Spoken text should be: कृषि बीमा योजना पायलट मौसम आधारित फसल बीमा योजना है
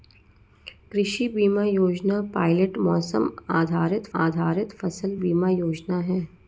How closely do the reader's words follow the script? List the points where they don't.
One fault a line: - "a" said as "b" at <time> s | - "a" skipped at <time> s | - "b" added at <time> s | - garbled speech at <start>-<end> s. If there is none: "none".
- "आधारित" added at 4.2 s